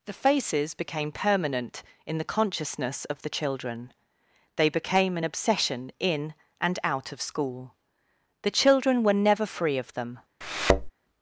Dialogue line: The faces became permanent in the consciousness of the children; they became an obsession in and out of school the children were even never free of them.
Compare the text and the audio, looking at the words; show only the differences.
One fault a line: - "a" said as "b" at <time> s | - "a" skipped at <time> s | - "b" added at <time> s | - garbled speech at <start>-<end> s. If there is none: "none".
- "even" skipped at 9.1 s